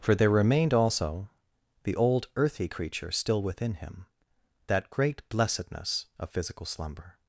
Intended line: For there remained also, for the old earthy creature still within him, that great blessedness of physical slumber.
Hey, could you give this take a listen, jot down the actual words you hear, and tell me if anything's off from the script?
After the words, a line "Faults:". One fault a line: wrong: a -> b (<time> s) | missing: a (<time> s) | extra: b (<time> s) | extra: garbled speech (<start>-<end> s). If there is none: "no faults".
For there remained also, the old earthy creature still within him, that great blessedness of physical slumber.
Faults:
missing: for (1.3 s)